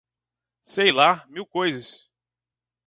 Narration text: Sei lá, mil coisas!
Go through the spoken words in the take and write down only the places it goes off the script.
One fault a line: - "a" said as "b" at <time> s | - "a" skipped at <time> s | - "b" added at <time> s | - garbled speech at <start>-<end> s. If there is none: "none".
none